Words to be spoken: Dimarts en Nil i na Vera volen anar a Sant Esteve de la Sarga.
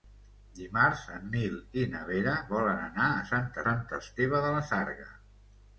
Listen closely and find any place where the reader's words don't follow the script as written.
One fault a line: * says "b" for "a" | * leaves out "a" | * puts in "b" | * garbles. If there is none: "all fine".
* puts in "Sant"